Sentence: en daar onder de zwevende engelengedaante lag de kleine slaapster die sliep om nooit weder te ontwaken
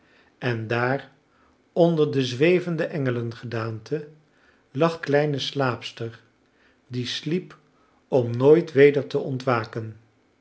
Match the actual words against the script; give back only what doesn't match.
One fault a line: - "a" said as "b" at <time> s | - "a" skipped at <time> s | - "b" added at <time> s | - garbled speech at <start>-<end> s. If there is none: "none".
- "de" skipped at 5.0 s